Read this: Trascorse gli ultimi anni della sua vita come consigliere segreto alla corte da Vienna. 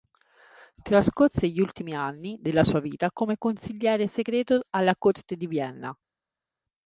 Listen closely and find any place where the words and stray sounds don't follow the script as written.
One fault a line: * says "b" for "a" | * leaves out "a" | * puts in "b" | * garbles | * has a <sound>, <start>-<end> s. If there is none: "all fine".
* says "di" for "da"